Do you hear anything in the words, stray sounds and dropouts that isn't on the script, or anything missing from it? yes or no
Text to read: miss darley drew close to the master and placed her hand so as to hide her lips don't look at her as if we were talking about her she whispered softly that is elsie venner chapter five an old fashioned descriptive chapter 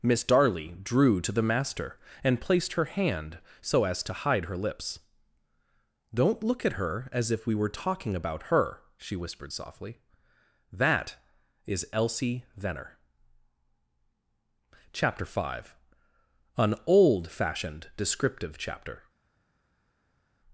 yes